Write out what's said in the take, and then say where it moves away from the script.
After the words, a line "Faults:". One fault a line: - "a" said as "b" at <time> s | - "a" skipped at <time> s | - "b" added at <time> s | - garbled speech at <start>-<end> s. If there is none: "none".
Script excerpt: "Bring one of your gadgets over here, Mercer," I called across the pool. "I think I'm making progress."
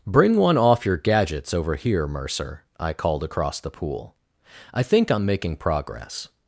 "Bring one off your gadgets over here, Mercer," I called across the pool. "I think I'm making progress."
Faults:
- "of" said as "off" at 0.6 s